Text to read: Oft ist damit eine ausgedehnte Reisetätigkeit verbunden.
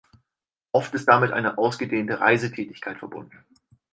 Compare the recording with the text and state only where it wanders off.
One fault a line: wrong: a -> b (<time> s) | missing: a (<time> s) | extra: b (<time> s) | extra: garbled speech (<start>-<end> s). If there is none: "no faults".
no faults